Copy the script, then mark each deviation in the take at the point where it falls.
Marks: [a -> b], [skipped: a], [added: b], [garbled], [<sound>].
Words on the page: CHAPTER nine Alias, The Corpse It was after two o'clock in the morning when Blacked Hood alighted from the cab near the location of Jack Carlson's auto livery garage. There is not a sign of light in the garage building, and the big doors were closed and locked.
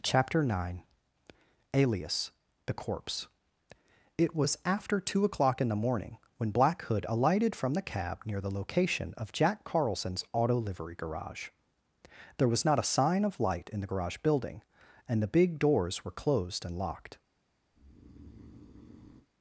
CHAPTER nine Alias, The Corpse It was after two o'clock in the morning when [Blacked -> Black] Hood alighted from the cab near the location of Jack Carlson's auto livery garage. There [is -> was] not a sign of light in the garage building, and the big doors were closed and locked. [breath]